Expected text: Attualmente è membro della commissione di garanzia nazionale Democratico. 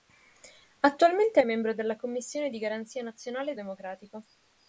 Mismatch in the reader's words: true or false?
false